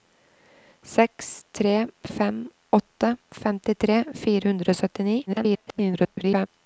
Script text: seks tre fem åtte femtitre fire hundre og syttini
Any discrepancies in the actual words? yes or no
yes